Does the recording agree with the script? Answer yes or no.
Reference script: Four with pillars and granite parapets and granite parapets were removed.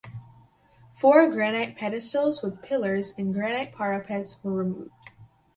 no